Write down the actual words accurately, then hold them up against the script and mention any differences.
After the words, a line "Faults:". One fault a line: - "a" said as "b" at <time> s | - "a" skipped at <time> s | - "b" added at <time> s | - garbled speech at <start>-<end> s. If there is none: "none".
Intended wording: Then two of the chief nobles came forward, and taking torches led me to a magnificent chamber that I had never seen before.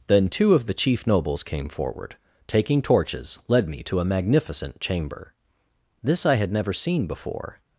Then two of the chief nobles came forward, taking torches led me to a magnificent chamber this I had never seen before.
Faults:
- "and" skipped at 2.2 s
- "that" said as "this" at 6.0 s